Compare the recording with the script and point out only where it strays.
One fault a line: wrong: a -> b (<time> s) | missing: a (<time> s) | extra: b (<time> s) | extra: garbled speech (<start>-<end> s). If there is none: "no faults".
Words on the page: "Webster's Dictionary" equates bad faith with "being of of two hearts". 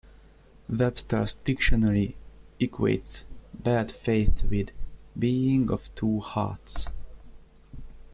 missing: of (5.9 s)